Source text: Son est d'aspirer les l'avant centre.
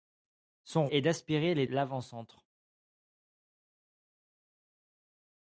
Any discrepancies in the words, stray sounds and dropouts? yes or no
no